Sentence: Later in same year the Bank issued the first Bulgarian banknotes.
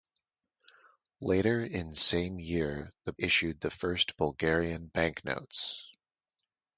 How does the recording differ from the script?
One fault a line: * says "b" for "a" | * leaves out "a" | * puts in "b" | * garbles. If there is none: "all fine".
* leaves out "Bank"